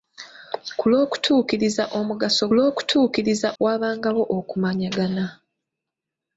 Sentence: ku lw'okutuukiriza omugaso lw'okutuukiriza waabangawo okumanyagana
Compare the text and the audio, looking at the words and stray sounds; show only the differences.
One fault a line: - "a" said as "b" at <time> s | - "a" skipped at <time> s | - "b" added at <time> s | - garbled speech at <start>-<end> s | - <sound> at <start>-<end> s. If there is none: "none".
none